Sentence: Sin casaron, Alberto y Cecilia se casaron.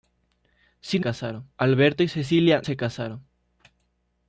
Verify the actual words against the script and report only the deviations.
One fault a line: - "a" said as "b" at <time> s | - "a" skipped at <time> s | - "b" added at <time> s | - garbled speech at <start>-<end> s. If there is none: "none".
none